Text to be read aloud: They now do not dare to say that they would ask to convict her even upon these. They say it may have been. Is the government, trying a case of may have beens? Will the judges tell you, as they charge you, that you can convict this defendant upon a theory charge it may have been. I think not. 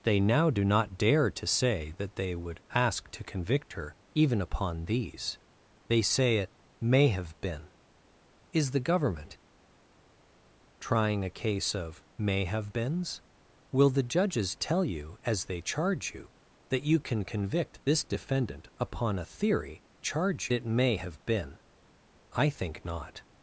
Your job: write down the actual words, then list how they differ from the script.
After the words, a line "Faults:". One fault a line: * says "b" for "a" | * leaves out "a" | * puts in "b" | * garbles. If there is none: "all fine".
They now do not dare to say that they would ask to convict her even upon these. They say it may have been. Is the government, trying a case of may have beens? Will the judges tell you, as they charge you, that you can convict this defendant upon a theory charge it may have been. I think not.
Faults:
all fine